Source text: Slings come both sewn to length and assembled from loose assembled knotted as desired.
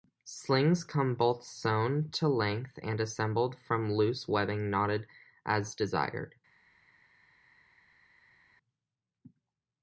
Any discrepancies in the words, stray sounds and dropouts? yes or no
yes